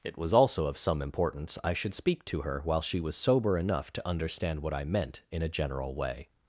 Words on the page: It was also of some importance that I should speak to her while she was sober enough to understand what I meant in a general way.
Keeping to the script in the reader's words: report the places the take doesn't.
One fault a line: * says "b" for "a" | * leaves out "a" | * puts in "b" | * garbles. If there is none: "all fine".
* leaves out "that"